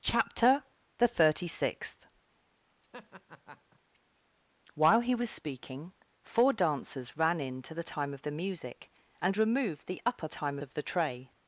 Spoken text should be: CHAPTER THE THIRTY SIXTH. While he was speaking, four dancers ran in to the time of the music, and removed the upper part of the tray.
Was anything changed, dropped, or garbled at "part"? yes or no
yes